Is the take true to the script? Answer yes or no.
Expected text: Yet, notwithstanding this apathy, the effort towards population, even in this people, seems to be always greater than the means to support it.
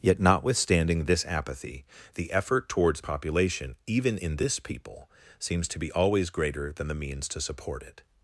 yes